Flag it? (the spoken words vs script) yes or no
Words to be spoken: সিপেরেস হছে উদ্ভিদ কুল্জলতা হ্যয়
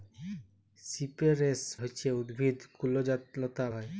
no